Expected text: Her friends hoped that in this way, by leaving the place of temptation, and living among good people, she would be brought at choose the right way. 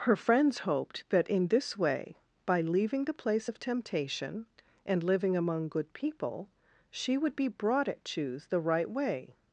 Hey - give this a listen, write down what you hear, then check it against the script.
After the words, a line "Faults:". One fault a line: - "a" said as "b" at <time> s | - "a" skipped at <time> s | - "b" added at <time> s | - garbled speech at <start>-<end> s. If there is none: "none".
Her friends hoped that in this way, by leaving the place of temptation, and living among good people, she would be brought at choose the right way.
Faults:
none